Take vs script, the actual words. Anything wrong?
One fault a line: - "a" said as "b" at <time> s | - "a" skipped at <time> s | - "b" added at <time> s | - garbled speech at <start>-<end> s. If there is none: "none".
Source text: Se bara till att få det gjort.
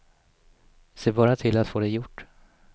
none